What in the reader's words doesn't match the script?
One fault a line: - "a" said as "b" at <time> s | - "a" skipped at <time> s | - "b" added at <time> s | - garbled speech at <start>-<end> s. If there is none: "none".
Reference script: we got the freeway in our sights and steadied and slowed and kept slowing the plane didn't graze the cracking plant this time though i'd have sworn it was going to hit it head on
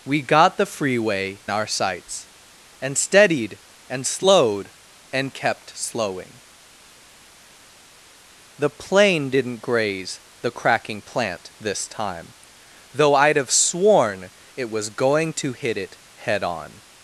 - "in" skipped at 1.4 s